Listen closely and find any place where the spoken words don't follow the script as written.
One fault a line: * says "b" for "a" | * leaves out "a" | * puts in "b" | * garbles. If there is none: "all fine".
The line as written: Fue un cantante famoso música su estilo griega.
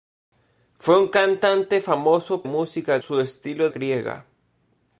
all fine